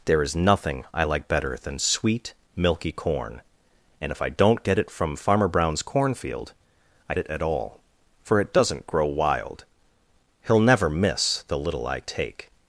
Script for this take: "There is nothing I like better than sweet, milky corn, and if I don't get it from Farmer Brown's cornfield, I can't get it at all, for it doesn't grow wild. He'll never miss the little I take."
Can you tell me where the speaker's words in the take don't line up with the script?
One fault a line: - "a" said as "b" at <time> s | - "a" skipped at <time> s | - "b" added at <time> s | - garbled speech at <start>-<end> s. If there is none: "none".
- "can't get" skipped at 7.1 s